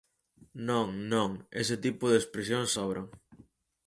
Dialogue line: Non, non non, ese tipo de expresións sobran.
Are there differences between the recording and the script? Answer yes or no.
yes